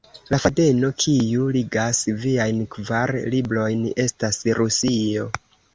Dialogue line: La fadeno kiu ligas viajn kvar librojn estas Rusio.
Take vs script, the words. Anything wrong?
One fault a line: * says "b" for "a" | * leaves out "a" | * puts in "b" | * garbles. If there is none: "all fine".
all fine